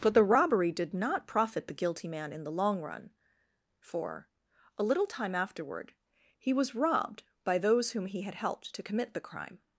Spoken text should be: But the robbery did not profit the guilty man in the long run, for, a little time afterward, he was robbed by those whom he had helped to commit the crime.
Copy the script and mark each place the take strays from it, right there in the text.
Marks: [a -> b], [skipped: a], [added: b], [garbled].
But the robbery did not profit the guilty man in the long run, for, a little time afterward, he was robbed by those whom he had helped to commit the crime.